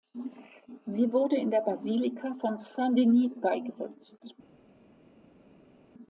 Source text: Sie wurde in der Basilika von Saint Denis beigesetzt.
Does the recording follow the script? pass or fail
pass